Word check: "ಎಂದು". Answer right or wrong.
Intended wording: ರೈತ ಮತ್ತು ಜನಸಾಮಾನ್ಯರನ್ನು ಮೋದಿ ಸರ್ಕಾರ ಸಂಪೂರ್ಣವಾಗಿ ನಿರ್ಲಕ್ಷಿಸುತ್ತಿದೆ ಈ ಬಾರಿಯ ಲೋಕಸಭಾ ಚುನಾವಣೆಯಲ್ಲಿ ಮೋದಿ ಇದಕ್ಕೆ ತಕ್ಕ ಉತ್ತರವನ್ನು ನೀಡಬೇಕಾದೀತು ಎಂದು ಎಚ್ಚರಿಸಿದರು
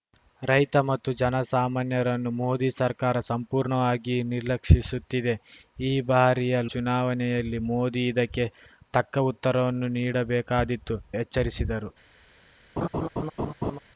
wrong